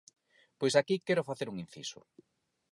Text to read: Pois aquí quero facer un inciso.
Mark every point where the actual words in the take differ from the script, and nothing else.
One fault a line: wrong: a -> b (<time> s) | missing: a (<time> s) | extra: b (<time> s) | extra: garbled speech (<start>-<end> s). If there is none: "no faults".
no faults